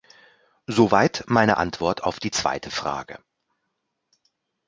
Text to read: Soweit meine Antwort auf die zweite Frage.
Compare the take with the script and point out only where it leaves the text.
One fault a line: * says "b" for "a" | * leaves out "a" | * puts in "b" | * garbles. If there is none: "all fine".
all fine